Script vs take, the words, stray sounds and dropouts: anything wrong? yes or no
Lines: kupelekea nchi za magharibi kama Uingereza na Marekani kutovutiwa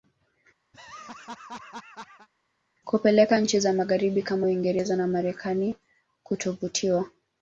yes